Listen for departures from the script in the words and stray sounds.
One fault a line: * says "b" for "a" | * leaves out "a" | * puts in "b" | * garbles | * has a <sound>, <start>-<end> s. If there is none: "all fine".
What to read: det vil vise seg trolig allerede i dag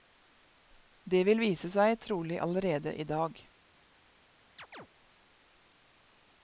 * has a chirp, 4.6-4.9 s